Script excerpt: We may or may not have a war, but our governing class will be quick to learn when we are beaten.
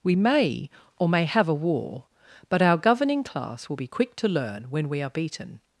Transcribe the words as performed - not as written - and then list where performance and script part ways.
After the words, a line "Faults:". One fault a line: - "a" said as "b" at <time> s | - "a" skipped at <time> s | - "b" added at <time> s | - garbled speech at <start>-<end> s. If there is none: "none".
We may or may have a war, but our governing class will be quick to learn when we are beaten.
Faults:
- "not" skipped at 1.2 s